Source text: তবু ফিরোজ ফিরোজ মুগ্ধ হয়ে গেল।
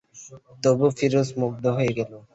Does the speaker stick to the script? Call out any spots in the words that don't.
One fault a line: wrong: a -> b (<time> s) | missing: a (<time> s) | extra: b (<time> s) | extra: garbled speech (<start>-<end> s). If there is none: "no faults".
missing: ফিরোজ (1.3 s)